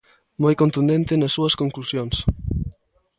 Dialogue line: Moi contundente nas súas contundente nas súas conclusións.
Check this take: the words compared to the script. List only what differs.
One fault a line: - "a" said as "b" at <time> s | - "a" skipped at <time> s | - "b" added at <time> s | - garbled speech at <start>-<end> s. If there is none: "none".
- "contundente nas súas" skipped at 1.5 s